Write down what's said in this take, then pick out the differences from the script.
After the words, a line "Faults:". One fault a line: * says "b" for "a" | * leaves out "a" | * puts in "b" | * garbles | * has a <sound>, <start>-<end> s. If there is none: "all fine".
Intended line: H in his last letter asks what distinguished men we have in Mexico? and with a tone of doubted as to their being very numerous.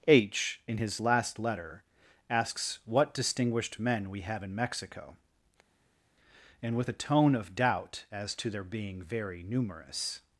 H in his last letter asks what distinguished men we have in Mexico? and with a tone of doubt as to their being very numerous.
Faults:
* says "doubt" for "doubted"